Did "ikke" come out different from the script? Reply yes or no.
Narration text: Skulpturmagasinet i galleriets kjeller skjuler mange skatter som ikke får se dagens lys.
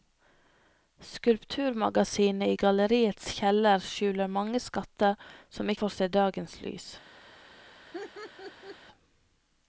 yes